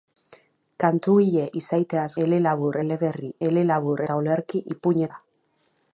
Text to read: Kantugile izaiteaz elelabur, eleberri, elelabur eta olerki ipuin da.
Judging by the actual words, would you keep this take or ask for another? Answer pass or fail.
pass